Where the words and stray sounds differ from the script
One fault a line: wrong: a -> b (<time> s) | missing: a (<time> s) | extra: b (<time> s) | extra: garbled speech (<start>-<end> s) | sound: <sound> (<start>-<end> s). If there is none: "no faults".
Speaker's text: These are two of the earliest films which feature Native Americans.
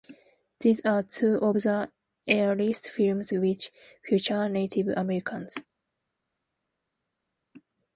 no faults